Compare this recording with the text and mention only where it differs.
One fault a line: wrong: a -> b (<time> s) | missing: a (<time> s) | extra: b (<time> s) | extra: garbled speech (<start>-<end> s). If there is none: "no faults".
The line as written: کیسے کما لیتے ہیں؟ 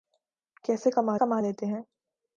extra: کما (1.2 s)